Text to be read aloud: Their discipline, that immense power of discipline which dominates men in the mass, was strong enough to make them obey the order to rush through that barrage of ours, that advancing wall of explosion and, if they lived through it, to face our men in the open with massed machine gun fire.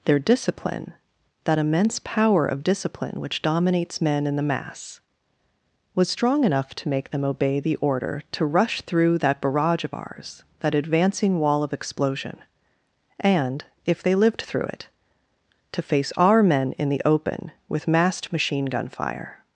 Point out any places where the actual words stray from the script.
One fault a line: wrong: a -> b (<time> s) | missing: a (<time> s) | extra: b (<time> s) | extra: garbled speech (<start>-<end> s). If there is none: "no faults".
no faults